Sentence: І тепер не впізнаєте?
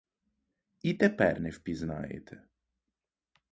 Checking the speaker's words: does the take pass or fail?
pass